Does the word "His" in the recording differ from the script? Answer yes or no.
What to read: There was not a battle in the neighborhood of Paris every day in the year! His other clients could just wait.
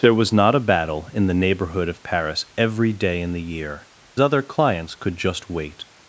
yes